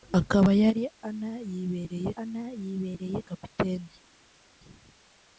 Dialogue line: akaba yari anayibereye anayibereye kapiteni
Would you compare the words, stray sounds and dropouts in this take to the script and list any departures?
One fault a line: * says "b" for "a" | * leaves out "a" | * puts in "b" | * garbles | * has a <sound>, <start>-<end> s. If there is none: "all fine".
all fine